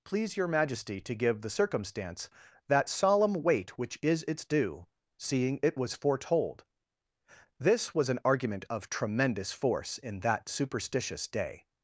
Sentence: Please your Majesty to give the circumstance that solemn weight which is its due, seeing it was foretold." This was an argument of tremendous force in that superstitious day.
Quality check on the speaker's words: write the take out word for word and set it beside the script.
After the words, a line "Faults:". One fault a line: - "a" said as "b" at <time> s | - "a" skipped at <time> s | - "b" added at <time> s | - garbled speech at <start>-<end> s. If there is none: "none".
Please your Majesty to give the circumstance that solemn weight which is its due, seeing it was foretold." This was an argument of tremendous force in that superstitious day.
Faults:
none